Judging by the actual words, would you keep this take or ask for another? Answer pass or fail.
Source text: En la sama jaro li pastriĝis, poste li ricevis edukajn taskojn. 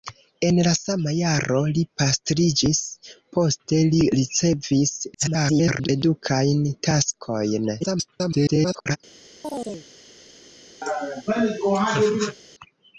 fail